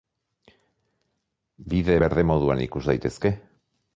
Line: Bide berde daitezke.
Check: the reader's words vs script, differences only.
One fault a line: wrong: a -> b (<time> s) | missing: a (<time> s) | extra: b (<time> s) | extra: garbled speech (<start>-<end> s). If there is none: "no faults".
extra: moduan ikus (2.3 s)